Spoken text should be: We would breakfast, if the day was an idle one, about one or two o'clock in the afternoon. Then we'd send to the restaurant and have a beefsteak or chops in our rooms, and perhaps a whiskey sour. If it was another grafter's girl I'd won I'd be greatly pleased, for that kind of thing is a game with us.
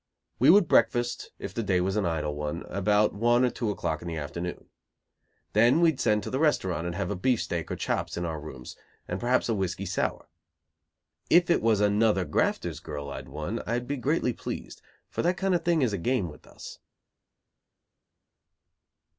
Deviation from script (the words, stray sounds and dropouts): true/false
false